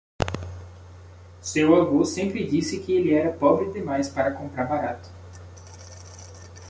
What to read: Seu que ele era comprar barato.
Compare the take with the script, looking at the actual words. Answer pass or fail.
fail